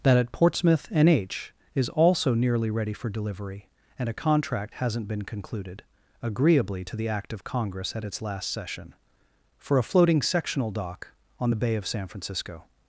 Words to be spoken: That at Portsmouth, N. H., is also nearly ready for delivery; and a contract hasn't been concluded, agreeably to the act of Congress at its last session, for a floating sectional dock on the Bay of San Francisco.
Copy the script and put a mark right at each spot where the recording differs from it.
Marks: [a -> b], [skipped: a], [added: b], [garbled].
That at Portsmouth, N. H., is also nearly ready for delivery; and a contract hasn't been concluded, agreeably to the act of Congress at its last session, for a floating sectional dock on the Bay of San Francisco.